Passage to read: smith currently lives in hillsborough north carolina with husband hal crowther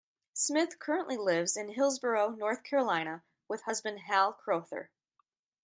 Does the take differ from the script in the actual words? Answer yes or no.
no